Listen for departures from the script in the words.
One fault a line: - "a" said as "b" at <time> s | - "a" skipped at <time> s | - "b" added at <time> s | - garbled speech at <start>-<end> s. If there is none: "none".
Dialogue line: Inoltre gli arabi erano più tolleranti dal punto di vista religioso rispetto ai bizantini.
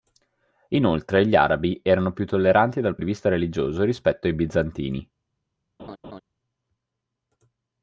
- "punto" skipped at 3.0 s